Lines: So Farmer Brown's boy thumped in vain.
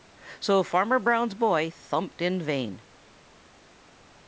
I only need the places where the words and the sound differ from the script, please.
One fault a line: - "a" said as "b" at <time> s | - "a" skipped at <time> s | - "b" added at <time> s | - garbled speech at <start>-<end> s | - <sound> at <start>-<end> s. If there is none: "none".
none